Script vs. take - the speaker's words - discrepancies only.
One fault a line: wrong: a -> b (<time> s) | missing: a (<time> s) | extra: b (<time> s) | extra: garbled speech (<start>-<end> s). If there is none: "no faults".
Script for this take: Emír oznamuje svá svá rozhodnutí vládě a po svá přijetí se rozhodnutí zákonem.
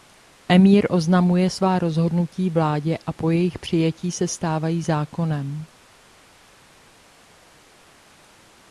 missing: svá (1.8 s)
wrong: svá -> jejich (3.3 s)
wrong: rozhodnutí -> stávají (4.3 s)